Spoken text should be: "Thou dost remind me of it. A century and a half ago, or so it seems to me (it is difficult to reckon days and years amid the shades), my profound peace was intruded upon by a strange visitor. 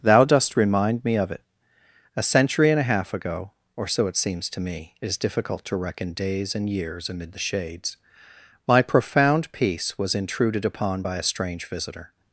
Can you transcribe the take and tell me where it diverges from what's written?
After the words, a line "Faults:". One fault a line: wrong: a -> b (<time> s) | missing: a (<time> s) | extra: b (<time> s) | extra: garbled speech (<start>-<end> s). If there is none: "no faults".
"Thou dost remind me of it. A century and a half ago, or so it seems to me (it is difficult to reckon days and years amid the shades), my profound peace was intruded upon by a strange visitor.
Faults:
no faults